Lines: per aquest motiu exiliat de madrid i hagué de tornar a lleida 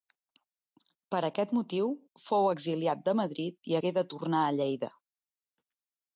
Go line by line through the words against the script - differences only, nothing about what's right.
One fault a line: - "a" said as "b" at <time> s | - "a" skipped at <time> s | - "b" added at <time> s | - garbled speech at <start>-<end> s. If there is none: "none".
- "fou" added at 2.3 s